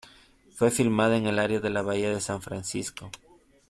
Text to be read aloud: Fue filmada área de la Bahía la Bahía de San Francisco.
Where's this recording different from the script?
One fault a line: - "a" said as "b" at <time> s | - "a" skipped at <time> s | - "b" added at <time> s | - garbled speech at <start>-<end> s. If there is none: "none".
- "en el" added at 1.1 s
- "la Bahía" skipped at 2.1 s